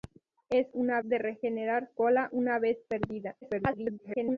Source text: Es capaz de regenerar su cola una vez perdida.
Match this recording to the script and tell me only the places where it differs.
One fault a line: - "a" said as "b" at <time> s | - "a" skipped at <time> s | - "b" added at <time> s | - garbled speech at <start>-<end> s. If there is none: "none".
- "capaz" said as "una" at 0.7 s
- "su" skipped at 1.9 s
- garbled speech at 3.4-4.4 s